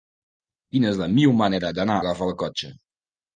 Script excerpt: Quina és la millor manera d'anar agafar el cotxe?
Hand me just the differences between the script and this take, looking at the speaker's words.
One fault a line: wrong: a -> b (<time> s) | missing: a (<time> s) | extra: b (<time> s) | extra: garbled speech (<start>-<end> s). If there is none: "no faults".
no faults